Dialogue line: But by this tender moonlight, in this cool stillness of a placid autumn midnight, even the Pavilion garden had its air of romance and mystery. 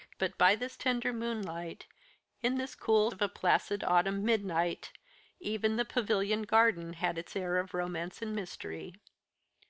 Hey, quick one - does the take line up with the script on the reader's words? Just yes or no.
no